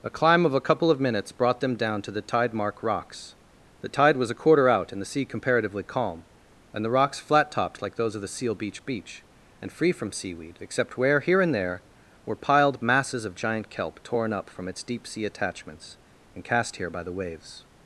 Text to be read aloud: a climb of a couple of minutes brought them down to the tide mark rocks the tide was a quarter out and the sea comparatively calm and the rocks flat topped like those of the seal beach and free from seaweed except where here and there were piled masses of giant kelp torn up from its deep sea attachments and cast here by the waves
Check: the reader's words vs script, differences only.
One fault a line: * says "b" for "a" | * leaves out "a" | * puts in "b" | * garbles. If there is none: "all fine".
* puts in "beach"